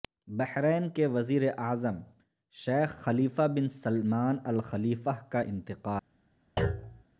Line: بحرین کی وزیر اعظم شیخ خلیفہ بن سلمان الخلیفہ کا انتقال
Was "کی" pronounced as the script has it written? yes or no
no